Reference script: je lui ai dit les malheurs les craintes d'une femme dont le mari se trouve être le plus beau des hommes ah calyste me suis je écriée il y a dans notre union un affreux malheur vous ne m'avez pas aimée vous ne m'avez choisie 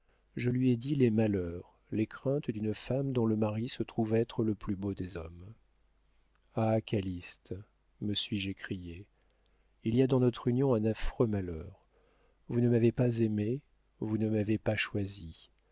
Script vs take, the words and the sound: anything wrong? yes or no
yes